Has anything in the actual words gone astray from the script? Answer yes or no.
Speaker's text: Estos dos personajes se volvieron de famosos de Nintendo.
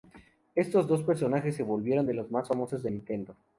yes